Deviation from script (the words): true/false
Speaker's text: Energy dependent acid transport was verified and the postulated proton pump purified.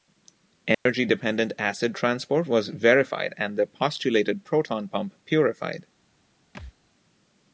false